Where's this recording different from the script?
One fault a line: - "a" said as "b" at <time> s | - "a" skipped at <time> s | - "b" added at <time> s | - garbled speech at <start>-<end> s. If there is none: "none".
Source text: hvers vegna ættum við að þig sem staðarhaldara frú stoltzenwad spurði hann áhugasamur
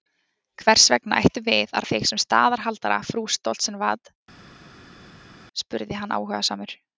none